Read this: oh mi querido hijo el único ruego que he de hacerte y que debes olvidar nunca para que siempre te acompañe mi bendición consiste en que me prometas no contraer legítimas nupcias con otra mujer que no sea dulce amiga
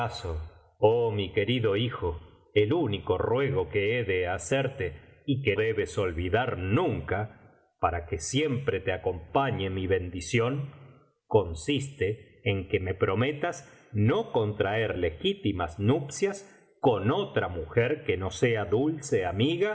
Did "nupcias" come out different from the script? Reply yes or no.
no